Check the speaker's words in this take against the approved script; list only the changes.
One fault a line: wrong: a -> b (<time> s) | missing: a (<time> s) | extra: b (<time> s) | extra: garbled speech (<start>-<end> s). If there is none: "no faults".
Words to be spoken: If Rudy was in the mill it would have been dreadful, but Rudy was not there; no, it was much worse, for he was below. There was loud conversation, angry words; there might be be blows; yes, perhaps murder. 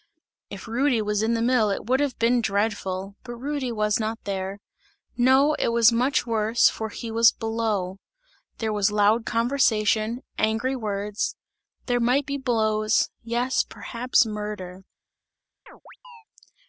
missing: be (12.4 s)